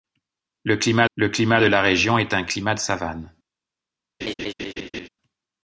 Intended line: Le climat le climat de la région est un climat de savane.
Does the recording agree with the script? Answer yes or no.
yes